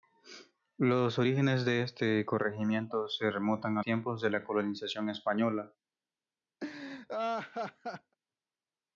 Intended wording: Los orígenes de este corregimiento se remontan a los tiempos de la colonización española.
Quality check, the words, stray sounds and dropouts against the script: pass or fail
fail